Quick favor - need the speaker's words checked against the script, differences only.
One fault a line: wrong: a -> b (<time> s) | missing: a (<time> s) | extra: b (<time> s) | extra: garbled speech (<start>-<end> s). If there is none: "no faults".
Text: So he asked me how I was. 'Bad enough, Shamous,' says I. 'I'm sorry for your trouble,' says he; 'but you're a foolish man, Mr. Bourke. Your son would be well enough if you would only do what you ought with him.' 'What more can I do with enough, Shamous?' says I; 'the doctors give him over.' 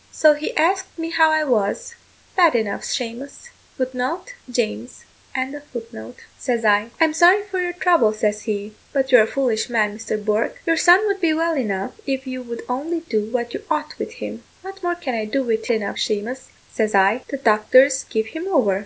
no faults